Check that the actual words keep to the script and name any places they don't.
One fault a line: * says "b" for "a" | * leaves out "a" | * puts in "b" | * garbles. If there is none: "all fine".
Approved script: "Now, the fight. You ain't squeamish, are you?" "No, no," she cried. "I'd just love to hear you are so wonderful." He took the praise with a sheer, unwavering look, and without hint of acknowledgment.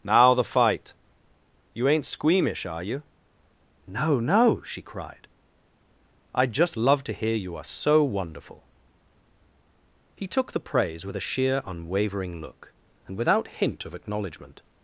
all fine